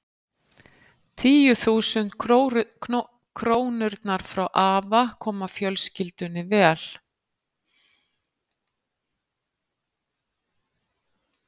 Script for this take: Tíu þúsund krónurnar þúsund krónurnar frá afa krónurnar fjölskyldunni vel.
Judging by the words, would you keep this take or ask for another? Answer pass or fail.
fail